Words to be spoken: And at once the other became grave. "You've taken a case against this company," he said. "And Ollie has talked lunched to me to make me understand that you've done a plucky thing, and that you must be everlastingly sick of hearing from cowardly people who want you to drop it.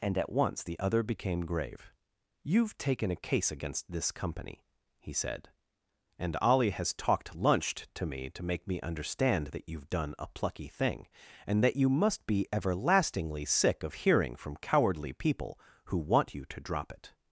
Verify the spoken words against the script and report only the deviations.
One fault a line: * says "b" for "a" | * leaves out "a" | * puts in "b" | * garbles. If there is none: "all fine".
all fine